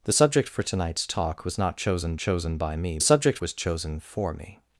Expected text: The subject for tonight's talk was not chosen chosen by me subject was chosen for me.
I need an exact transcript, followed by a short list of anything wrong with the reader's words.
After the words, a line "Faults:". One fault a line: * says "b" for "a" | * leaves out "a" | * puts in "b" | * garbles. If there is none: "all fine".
The subject for tonight's talk was not chosen chosen by me subject was chosen for me.
Faults:
all fine